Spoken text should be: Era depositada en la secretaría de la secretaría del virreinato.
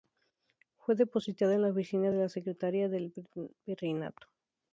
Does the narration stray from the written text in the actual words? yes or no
yes